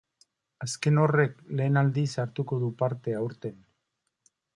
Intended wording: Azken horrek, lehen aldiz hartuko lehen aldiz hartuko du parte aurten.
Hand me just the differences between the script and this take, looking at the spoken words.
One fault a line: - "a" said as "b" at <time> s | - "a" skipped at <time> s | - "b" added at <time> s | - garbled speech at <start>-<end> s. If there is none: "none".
- "lehen aldiz hartuko" skipped at 2.6 s